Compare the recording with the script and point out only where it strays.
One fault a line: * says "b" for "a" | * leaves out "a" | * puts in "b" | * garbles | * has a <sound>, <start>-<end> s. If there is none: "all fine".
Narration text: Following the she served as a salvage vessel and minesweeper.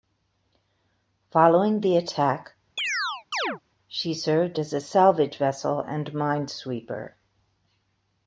* puts in "attack"
* has a chirp, 2.8-3.6 s